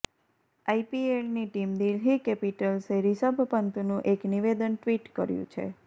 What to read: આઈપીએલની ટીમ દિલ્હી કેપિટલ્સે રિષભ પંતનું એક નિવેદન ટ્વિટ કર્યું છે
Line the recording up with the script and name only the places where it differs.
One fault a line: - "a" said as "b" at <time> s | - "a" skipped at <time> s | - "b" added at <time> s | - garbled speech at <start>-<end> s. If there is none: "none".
none